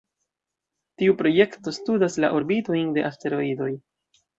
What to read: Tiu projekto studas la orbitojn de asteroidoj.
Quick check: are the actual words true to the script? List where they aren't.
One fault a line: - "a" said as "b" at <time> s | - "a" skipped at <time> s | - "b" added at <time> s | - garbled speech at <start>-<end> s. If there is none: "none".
none